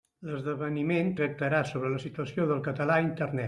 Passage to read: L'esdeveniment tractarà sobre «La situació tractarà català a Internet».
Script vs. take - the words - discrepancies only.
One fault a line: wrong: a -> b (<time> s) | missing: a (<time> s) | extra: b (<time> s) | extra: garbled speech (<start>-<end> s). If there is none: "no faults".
wrong: tractarà -> del (2.5 s)